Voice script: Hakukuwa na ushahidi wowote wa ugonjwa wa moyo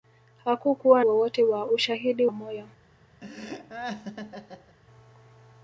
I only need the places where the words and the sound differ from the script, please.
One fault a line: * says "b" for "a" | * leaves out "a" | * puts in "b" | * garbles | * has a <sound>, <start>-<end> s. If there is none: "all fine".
* leaves out "na ushahidi"
* says "ushahidi" for "ugonjwa"
* has a laugh, 3.2-4.8 s